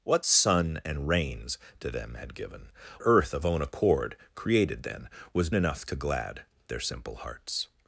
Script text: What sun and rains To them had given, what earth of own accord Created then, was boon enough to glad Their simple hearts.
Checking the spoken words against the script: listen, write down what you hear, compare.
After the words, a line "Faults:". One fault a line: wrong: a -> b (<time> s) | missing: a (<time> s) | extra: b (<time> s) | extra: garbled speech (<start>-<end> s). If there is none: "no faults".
What sun and rains To them had given, earth of own accord Created then, was enough to glad Their simple hearts.
Faults:
missing: what (2.7 s)
missing: boon (5.5 s)